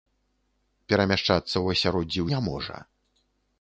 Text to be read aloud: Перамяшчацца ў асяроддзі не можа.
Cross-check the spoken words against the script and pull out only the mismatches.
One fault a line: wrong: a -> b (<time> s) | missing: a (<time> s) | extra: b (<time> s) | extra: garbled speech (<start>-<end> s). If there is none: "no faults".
no faults